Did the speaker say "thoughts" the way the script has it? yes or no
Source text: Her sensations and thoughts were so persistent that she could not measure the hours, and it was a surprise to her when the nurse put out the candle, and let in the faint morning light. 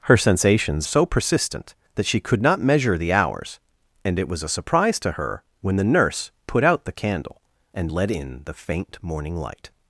no